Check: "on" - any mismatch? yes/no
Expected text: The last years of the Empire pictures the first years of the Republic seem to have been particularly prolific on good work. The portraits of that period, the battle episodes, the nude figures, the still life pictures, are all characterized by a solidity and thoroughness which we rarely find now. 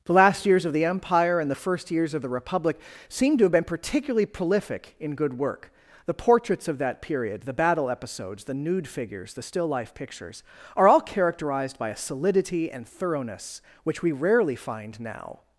yes